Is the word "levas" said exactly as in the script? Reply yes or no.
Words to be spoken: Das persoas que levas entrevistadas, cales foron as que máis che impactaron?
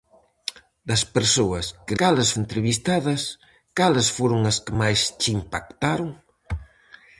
no